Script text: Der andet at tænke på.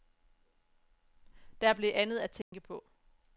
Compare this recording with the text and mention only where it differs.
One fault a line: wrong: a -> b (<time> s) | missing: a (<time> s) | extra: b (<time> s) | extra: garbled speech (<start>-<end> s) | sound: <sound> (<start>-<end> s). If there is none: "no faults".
extra: blev (1.7 s)
sound: dropout (2.4-2.5 s)